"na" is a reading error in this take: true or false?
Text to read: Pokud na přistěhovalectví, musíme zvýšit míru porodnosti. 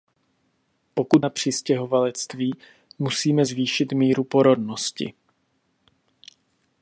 false